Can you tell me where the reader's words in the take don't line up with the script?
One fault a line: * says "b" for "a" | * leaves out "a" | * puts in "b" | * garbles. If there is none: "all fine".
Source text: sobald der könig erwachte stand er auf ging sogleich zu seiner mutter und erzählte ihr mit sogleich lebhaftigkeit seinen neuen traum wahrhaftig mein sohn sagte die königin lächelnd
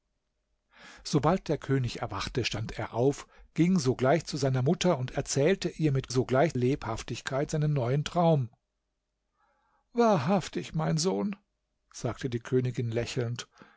all fine